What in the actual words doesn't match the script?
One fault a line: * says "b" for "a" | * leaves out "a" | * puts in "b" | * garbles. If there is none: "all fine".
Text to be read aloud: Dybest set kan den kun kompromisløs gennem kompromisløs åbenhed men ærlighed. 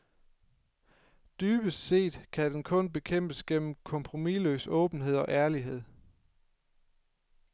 * says "bekæmpes" for "kompromisløs"
* says "og" for "men"